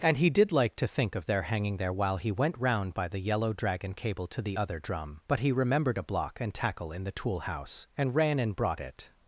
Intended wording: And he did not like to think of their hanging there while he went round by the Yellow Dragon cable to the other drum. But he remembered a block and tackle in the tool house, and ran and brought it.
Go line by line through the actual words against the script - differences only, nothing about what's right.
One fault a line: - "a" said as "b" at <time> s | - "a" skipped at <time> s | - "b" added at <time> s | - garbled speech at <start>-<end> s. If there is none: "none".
- "not" skipped at 0.5 s